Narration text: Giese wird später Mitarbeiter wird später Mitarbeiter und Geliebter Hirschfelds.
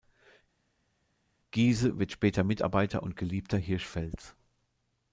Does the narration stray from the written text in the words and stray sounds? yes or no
yes